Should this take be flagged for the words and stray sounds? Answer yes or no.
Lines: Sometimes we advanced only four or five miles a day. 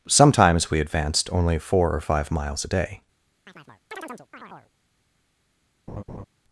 yes